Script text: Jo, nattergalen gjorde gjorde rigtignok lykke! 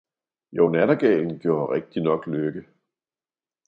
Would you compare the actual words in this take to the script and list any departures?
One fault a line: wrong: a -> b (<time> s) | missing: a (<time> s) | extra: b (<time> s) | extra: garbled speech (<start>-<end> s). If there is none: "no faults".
missing: gjorde (1.7 s)